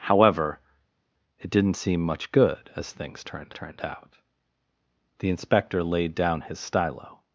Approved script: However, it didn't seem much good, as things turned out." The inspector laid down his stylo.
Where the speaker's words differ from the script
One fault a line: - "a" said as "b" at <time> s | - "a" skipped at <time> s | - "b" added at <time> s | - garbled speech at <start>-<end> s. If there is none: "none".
- "turned" added at 3.5 s